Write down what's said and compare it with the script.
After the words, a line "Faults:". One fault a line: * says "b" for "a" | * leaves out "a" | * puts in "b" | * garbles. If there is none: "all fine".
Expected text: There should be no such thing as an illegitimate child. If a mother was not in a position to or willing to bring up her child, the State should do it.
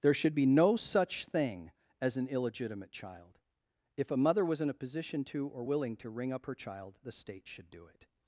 There should be no such thing as an illegitimate child. If a mother was in a position to or willing to ring up her child, the State should do it.
Faults:
* leaves out "not"
* says "ring" for "bring"